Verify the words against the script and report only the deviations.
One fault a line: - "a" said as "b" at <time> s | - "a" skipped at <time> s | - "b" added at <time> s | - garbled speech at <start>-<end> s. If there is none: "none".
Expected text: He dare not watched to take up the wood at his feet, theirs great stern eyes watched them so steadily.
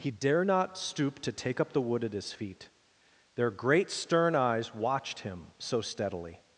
- "watched" said as "stoop" at 0.8 s
- "theirs" said as "their" at 3.3 s
- "them" said as "him" at 5.2 s